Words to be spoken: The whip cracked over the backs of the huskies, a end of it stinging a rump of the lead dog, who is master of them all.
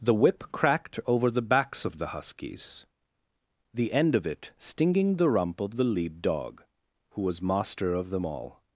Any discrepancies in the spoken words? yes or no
yes